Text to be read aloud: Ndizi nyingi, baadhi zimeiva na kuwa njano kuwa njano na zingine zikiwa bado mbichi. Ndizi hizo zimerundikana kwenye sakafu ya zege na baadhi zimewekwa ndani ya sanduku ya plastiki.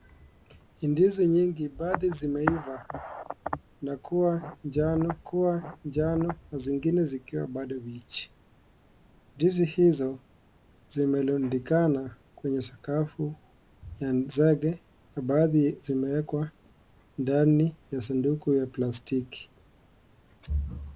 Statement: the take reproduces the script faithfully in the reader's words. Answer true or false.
true